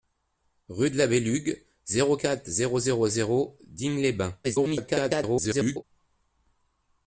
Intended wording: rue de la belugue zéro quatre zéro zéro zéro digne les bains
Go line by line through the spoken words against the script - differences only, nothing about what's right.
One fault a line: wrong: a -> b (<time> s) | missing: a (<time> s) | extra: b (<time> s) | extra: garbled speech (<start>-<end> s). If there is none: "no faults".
extra: garbled speech (4.4-5.8 s)